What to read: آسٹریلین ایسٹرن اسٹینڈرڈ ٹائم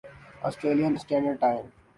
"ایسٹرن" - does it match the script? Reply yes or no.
no